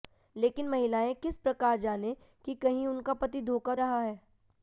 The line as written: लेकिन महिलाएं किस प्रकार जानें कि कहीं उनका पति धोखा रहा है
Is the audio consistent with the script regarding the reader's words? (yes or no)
yes